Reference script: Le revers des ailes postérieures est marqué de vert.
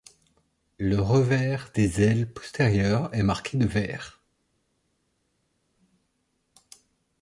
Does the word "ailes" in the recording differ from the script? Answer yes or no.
no